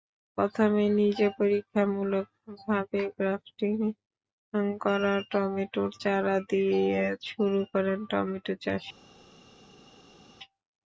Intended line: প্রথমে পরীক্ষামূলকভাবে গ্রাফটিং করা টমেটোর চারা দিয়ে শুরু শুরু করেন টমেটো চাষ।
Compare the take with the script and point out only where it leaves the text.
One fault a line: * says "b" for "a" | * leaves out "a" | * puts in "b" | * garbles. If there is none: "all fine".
* puts in "নিজে"
* leaves out "শুরু"